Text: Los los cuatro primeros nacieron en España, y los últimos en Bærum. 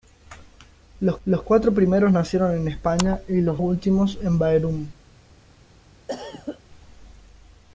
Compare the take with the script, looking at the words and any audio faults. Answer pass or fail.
fail